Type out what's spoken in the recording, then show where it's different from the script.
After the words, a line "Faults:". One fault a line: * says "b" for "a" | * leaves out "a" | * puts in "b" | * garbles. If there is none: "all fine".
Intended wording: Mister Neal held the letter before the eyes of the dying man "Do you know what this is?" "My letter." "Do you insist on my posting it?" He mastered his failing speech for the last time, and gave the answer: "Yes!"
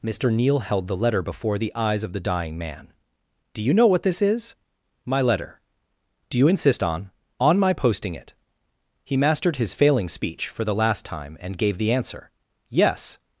Mister Neal held the letter before the eyes of the dying man "Do you know what this is?" "My letter." "Do you insist on on my posting it?" He mastered his failing speech for the last time, and gave the answer: "Yes!"
Faults:
* puts in "on"